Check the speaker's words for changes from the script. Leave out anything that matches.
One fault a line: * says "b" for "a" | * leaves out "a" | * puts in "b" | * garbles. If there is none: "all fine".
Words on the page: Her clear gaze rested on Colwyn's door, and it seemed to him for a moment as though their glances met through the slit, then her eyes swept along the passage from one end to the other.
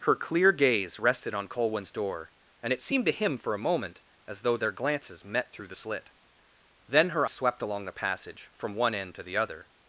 * leaves out "eyes"